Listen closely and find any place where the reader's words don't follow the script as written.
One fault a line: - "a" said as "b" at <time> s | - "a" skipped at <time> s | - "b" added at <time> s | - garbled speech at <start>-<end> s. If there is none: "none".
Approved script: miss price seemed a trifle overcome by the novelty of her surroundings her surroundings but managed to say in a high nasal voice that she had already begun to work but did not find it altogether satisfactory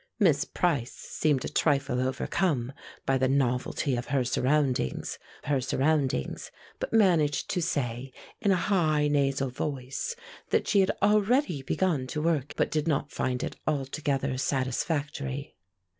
none